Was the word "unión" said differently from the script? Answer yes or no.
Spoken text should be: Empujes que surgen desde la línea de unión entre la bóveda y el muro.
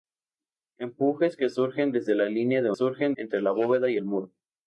yes